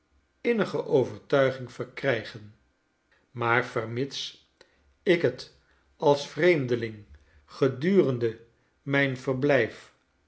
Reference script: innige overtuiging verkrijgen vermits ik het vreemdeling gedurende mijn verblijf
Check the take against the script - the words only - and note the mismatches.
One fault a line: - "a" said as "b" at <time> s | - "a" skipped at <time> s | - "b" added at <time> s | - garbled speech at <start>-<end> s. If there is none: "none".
- "maar" added at 3.3 s
- "als" added at 6.0 s